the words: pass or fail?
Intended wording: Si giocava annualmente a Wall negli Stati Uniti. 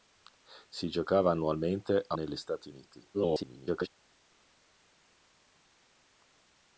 fail